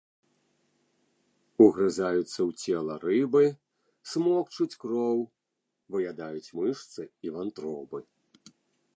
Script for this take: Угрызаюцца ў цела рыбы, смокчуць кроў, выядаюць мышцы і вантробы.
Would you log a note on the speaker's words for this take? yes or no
no